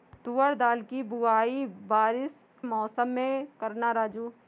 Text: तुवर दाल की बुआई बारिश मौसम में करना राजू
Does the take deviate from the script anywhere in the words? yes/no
no